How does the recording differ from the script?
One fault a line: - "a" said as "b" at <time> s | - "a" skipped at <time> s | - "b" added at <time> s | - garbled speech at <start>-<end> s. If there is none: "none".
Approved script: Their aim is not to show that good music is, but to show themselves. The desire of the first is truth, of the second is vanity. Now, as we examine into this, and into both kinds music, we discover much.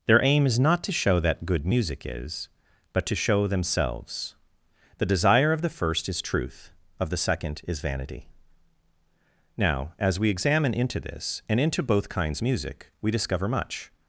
none